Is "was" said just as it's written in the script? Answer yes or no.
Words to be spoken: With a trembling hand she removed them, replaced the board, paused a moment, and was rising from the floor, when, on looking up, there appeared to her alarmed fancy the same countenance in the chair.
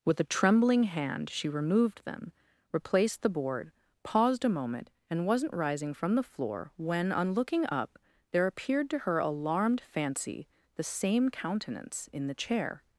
no